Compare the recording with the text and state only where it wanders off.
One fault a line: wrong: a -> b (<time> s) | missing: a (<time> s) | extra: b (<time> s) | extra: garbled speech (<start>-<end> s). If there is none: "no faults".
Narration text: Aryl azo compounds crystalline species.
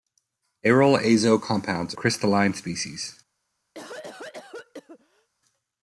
no faults